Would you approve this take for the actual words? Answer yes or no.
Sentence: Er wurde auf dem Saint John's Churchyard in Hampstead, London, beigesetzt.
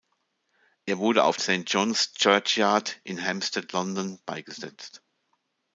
no